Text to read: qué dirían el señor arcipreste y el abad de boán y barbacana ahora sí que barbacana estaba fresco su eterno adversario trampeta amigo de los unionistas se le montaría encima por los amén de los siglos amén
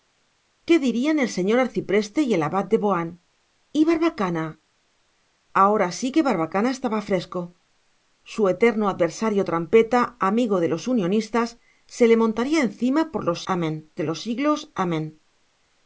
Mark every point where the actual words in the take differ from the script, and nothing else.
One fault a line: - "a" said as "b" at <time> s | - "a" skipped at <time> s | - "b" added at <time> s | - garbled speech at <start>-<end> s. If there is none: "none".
none